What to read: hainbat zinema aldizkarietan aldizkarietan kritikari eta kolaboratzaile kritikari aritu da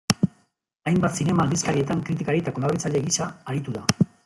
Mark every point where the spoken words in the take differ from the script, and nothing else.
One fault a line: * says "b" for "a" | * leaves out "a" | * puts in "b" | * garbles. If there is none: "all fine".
* leaves out "aldizkarietan"
* says "gisa" for "kritikari"